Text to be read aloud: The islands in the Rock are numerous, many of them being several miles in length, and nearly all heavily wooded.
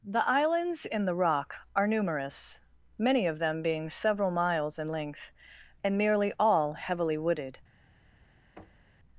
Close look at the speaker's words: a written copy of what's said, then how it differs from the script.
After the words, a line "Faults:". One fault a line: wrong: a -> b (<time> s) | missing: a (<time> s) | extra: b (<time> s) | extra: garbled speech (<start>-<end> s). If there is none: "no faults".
The islands in the Rock are numerous, many of them being several miles in length, and nearly all heavily wooded.
Faults:
no faults